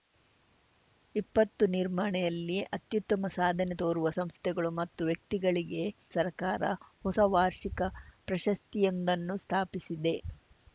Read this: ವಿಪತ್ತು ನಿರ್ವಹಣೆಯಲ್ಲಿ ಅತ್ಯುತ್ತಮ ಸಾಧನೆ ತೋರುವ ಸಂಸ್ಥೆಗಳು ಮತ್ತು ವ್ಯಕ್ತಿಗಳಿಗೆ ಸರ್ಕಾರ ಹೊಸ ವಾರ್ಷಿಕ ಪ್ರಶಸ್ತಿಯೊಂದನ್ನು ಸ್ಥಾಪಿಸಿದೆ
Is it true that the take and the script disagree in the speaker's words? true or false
false